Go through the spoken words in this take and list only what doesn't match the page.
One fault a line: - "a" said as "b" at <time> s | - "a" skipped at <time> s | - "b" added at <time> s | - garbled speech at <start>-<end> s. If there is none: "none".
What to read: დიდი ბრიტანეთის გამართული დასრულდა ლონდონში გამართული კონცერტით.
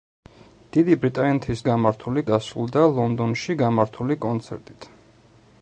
none